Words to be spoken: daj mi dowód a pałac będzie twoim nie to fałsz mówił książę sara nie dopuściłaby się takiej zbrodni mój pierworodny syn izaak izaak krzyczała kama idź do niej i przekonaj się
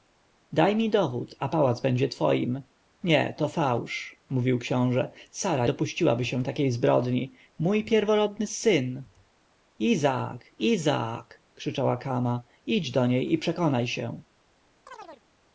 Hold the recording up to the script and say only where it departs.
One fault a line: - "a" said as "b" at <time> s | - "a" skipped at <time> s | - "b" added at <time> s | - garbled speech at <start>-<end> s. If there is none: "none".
- "nie" skipped at 5.7 s